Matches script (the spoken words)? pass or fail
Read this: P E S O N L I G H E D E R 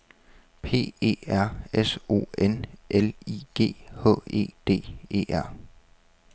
fail